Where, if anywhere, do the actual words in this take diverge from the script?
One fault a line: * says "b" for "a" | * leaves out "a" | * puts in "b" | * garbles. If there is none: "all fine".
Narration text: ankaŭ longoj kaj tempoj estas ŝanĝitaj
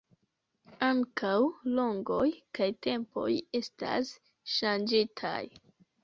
all fine